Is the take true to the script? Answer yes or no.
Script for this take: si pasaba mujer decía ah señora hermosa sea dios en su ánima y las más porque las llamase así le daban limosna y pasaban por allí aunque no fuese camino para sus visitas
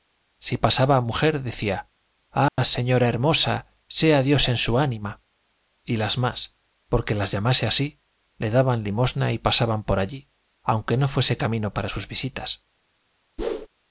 yes